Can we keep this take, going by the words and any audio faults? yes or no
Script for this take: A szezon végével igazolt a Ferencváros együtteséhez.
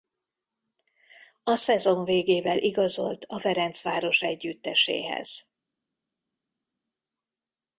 yes